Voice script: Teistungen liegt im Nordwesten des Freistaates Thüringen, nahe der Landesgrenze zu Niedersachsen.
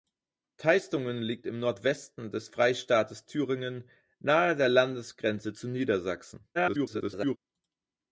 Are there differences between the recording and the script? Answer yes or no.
yes